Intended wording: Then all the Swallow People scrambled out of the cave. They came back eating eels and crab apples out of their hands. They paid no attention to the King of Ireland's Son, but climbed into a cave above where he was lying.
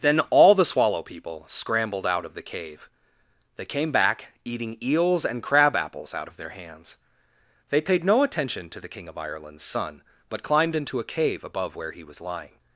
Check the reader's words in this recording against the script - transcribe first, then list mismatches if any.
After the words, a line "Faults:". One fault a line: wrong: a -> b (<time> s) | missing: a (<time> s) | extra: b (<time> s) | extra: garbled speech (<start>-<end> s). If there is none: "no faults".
Then all the Swallow People scrambled out of the cave. They came back eating eels and crab apples out of their hands. They paid no attention to the King of Ireland's Son, but climbed into a cave above where he was lying.
Faults:
no faults